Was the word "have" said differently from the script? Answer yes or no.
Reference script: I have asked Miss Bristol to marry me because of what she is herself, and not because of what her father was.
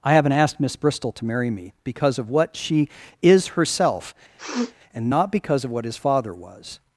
yes